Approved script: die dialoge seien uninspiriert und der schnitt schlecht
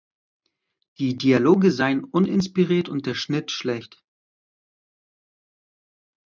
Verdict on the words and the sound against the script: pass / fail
pass